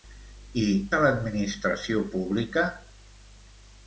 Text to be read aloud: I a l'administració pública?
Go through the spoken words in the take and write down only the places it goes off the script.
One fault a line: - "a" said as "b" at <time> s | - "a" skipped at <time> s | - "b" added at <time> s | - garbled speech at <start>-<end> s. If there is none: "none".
none